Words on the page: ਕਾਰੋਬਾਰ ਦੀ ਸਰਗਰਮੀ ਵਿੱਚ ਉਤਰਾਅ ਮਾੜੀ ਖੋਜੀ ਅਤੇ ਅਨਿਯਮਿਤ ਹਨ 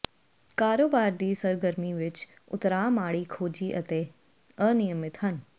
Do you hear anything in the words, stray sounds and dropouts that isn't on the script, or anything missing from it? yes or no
no